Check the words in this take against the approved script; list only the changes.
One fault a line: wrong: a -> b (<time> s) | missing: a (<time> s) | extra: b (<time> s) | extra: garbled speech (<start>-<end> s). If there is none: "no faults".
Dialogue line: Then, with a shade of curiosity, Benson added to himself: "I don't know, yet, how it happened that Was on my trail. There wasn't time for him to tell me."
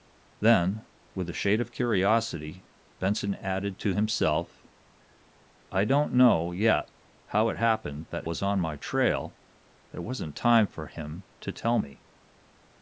no faults